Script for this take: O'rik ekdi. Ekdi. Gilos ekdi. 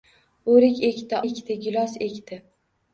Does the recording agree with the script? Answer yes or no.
yes